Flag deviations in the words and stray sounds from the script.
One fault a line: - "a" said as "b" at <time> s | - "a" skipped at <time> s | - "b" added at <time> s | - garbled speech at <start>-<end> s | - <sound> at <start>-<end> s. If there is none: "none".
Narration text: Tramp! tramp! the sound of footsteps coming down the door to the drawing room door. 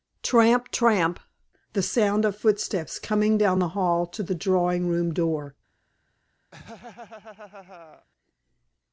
- "door" said as "hall" at 3.7 s
- laugh at 6.5-8.1 s